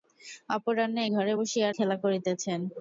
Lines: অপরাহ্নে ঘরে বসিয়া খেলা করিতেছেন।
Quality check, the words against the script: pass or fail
pass